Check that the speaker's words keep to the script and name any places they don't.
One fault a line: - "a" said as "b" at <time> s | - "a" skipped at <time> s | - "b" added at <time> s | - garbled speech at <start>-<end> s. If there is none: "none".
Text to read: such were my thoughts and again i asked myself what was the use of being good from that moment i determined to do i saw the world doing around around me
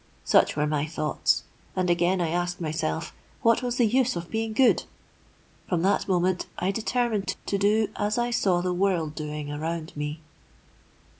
- "as" added at 8.0 s
- "around" skipped at 9.9 s